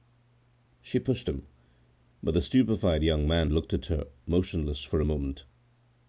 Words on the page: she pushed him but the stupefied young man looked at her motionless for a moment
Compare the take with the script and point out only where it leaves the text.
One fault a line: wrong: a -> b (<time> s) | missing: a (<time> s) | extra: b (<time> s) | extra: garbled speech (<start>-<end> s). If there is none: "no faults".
no faults